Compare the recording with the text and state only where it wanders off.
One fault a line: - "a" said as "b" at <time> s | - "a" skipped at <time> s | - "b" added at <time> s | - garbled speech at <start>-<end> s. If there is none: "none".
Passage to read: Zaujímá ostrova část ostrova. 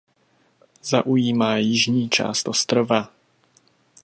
- "ostrova" said as "jižní" at 1.6 s